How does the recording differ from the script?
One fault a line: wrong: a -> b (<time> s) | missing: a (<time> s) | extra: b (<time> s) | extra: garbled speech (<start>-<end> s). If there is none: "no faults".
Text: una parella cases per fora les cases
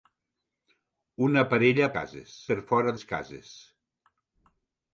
no faults